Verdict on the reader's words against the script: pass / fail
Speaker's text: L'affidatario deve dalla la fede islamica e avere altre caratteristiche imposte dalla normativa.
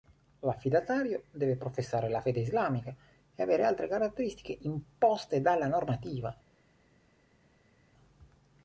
fail